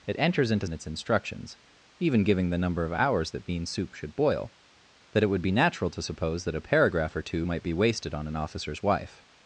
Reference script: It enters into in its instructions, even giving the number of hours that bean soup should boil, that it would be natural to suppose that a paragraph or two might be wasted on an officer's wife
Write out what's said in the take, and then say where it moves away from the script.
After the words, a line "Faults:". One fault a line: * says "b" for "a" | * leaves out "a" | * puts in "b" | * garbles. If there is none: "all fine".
It enters into in its instructions, even giving the number of hours that bean soup should boil, that it would be natural to suppose that a paragraph or two might be wasted on an officer's wife
Faults:
all fine